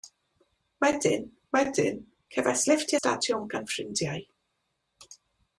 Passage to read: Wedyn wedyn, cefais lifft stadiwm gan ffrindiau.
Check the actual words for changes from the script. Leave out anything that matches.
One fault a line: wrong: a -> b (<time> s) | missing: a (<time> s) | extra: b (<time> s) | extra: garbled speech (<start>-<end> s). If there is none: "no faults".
no faults